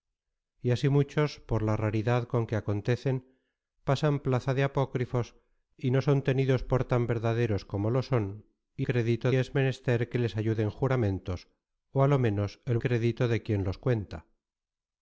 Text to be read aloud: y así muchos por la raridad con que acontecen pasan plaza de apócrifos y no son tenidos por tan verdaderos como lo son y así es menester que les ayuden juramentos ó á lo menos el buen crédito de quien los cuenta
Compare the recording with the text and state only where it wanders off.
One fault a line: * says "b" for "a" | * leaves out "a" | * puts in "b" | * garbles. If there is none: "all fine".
* says "crédito" for "así"
* leaves out "buen"